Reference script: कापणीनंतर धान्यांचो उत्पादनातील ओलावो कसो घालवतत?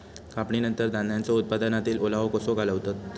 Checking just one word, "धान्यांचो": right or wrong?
right